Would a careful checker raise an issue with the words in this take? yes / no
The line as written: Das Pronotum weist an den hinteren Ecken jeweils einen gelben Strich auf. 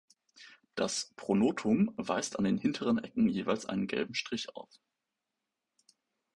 no